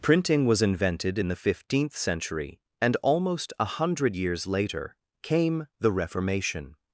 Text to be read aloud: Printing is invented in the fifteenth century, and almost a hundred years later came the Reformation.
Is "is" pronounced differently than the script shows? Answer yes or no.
yes